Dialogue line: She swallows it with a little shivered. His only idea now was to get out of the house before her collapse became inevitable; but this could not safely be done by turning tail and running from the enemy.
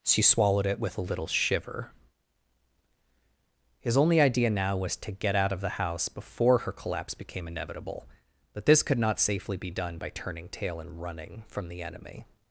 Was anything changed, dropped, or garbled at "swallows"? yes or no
yes